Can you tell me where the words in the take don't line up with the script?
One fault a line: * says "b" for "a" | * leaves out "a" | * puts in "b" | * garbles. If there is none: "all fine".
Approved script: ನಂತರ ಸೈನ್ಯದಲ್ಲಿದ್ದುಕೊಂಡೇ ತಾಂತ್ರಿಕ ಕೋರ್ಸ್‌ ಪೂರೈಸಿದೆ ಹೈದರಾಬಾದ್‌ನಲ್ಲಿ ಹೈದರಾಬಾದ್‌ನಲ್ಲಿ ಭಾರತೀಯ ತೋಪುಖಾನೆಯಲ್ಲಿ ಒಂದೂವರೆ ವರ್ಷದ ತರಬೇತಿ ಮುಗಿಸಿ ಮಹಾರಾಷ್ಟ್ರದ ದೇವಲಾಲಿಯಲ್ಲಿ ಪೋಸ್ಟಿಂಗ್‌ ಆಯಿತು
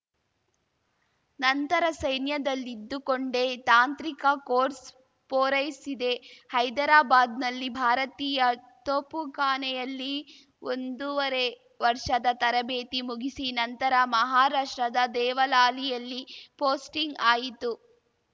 * leaves out "ಹೈದರಾಬಾದ್‌ನಲ್ಲಿ"
* puts in "ನಂತರ"